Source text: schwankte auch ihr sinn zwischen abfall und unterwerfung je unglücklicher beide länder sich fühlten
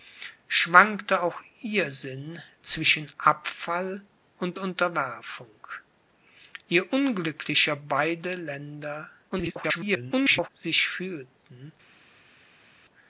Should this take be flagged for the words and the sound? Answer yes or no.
yes